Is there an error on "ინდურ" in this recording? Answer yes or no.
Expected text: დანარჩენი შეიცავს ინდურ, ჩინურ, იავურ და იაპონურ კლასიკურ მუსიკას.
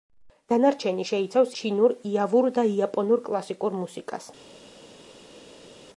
yes